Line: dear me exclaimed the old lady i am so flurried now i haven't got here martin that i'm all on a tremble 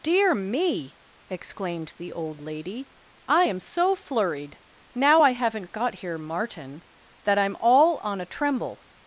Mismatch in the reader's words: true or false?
false